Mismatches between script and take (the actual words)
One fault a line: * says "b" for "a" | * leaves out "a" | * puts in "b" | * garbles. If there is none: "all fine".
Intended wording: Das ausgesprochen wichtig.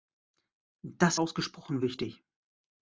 all fine